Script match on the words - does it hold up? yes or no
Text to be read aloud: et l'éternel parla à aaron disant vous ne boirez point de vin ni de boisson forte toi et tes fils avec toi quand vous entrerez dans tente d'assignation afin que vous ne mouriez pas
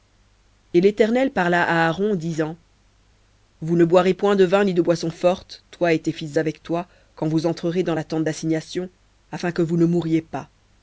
no